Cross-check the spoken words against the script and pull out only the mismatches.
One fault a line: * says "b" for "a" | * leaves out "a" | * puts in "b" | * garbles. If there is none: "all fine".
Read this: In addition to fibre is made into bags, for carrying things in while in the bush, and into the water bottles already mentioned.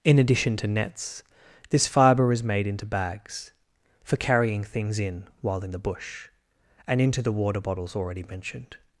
* puts in "nets this"